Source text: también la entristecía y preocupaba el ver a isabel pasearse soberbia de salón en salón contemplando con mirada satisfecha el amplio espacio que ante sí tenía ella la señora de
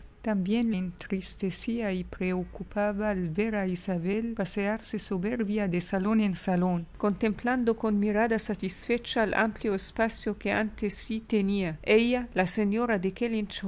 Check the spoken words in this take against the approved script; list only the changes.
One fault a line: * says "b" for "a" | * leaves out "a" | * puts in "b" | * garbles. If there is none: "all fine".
* leaves out "la"